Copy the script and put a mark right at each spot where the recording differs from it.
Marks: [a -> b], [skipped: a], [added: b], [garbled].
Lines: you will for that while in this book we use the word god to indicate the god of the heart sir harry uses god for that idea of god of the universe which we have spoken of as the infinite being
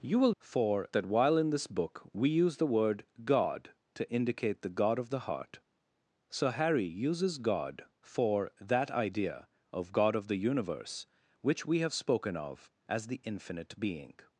you will for that while in this book we use the word god to indicate the god of the heart sir harry uses god for that idea of god of the universe which we have spoken of as the infinite being